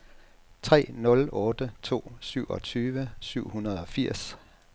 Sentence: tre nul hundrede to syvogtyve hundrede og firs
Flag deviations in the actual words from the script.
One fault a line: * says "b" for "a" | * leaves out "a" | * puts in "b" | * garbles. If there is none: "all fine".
* says "otte" for "hundrede"
* puts in "syv"